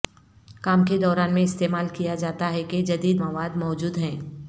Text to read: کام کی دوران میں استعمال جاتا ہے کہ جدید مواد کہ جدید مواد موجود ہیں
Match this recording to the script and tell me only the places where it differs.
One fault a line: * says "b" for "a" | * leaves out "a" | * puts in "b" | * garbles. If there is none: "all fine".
* says "کے" for "کی"
* puts in "کیا"
* leaves out "کہ جدید مواد"